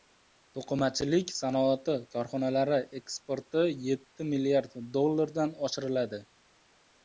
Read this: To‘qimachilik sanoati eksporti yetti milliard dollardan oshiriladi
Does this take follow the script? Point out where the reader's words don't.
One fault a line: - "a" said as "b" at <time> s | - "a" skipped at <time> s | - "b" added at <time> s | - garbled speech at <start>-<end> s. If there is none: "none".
- "korxonalari" added at 2.1 s